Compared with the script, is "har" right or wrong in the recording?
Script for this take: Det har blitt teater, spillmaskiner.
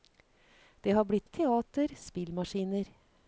right